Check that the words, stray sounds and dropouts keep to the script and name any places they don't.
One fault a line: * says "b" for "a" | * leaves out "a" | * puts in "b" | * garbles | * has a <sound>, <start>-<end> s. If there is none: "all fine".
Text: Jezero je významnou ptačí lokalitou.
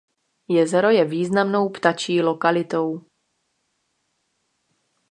all fine